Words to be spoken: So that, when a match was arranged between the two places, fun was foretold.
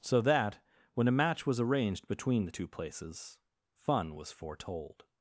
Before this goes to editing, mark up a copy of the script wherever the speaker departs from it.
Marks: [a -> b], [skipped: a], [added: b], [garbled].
So that, when a match was arranged between the two places, fun was foretold.